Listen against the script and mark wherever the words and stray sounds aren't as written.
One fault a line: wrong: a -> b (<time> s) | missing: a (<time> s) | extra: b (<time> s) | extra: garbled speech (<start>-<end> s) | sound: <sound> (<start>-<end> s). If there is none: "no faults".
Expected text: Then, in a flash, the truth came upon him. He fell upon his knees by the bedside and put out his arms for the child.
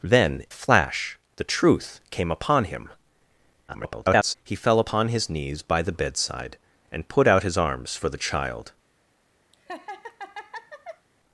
missing: in (0.5 s)
extra: garbled speech (3.7-4.3 s)
sound: laugh (9.5-11.1 s)